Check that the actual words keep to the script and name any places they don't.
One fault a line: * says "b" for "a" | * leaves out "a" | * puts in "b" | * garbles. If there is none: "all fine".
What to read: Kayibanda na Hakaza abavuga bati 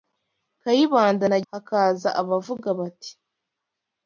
all fine